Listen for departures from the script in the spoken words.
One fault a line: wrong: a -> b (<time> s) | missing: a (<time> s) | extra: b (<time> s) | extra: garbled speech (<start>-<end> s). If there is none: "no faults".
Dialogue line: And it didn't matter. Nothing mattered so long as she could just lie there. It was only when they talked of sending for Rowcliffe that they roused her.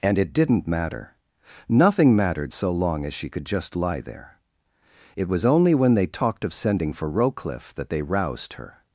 no faults